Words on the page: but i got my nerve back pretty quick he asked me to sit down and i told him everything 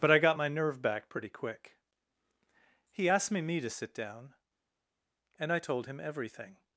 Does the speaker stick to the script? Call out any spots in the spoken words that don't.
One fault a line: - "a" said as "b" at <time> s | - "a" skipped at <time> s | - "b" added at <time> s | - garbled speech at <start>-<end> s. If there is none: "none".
- "me" added at 3.4 s